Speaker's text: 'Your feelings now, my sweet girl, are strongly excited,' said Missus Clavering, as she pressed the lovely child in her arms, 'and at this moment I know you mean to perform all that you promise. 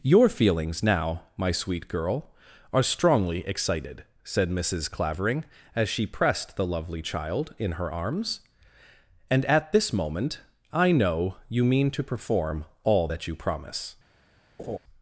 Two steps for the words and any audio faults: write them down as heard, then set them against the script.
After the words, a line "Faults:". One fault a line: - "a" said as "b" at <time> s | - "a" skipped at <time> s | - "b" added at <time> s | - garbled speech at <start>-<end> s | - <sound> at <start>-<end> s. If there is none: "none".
'Your feelings now, my sweet girl, are strongly excited,' said Missus Clavering, as she pressed the lovely child in her arms, 'and at this moment I know you mean to perform all that you promise.
Faults:
- laugh at 14.6-14.8 s